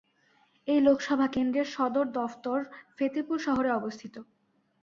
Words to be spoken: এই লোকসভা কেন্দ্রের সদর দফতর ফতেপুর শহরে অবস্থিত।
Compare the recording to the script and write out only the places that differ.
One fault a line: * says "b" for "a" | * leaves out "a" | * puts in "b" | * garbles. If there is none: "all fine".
all fine